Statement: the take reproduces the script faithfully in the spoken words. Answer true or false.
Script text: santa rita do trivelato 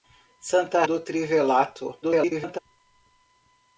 false